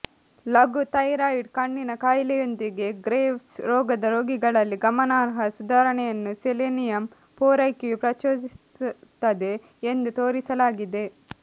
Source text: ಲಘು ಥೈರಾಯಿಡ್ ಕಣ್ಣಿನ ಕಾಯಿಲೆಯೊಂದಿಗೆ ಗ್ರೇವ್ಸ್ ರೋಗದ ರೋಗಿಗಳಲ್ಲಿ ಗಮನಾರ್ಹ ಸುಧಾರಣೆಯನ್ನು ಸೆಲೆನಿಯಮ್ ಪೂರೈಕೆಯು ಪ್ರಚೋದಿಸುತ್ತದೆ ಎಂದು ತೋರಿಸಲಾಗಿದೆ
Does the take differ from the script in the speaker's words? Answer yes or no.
no